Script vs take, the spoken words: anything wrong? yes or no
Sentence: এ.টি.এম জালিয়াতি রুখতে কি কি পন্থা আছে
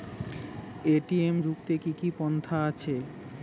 yes